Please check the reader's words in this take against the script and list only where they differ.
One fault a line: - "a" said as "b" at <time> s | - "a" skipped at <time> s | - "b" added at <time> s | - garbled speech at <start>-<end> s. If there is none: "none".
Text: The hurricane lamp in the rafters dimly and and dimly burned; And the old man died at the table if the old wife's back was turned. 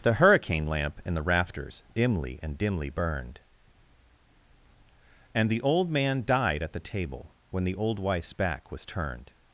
- "and" skipped at 2.6 s
- "if" said as "when" at 7.5 s